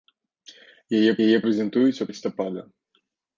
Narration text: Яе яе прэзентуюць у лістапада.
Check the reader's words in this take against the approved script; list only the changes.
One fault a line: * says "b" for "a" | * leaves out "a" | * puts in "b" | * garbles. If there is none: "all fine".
all fine